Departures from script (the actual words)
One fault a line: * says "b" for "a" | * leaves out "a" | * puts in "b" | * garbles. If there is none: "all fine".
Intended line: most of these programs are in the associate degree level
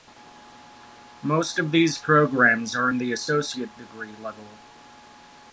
all fine